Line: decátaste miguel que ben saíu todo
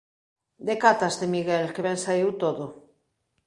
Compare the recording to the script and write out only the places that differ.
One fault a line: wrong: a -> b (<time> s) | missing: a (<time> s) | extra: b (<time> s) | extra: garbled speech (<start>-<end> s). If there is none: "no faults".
no faults